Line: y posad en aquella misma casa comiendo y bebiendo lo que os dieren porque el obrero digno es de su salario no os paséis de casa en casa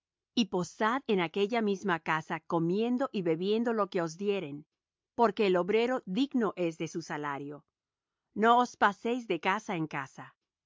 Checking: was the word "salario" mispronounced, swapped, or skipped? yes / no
no